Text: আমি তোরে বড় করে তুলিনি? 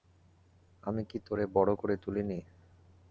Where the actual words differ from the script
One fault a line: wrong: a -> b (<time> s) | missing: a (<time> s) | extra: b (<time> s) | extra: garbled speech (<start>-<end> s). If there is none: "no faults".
extra: কি (1.1 s)